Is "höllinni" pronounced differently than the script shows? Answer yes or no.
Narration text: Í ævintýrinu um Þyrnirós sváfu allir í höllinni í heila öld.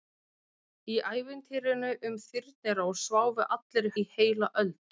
yes